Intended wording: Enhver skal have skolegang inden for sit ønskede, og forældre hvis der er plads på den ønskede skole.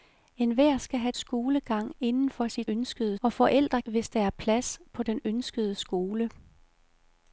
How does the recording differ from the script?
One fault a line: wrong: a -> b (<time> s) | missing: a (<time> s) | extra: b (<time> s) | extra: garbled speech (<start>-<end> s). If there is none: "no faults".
no faults